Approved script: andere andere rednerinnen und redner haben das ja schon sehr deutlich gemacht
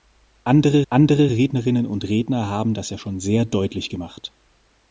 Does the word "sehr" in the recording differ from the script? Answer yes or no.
no